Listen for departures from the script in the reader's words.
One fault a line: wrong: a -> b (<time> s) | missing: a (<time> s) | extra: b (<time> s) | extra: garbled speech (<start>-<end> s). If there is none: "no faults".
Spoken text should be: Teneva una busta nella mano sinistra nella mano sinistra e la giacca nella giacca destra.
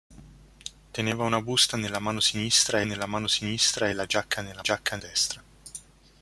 no faults